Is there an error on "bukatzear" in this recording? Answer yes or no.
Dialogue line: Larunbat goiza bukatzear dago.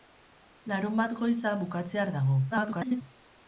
no